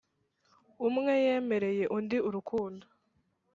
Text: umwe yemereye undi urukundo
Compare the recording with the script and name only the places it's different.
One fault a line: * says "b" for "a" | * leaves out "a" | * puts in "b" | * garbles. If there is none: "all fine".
all fine